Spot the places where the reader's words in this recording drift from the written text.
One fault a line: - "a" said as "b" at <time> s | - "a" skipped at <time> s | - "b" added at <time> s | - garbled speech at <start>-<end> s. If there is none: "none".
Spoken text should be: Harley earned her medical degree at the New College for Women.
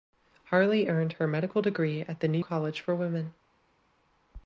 none